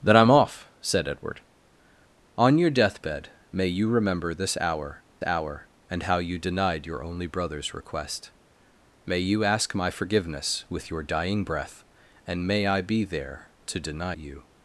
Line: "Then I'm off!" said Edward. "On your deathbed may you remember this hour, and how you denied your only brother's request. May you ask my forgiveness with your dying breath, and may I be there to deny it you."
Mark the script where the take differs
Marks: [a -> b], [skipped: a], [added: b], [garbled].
"Then I'm off!" said Edward. "On your deathbed may you remember this hour, [added: hour] and how you denied your only brother's request. May you ask my forgiveness with your dying breath, and may I be there to deny [skipped: it] you."